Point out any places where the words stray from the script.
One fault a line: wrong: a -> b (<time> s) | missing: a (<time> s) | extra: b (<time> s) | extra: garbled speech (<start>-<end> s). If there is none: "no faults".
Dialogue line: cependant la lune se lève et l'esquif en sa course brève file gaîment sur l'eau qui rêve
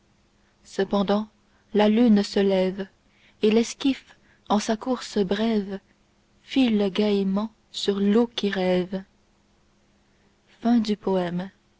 no faults